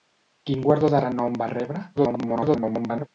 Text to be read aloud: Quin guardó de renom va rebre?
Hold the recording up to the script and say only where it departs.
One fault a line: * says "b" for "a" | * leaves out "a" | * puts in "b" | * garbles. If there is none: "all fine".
* garbles